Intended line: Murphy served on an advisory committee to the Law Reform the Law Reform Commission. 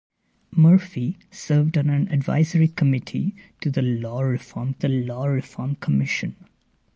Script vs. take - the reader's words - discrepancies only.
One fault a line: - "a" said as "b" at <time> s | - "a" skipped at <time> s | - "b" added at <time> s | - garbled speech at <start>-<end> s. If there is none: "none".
none